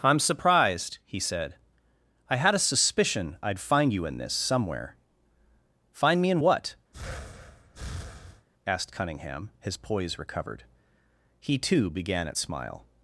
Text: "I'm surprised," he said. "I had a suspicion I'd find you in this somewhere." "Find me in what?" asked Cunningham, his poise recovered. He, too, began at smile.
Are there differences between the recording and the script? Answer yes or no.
no